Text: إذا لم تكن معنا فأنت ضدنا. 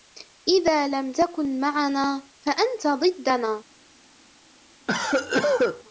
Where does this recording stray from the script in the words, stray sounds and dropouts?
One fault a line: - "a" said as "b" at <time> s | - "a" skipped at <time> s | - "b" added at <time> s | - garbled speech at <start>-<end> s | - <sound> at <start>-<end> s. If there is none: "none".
- cough at 4.9-5.8 s